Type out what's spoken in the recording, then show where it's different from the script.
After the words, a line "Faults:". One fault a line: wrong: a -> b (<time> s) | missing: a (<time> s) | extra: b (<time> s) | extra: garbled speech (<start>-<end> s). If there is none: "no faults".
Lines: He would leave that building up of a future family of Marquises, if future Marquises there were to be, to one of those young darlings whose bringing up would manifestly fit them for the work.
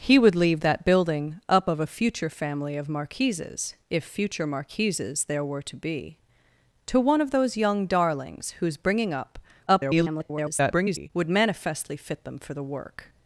He would leave that building up of a future family of Marquises, if future Marquises there were to be, to one of those young darlings whose bringing up [garbled] would manifestly fit them for the work.
Faults:
extra: garbled speech (9.7-11.1 s)